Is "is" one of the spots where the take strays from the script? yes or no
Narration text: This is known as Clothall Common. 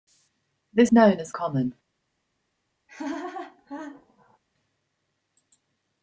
yes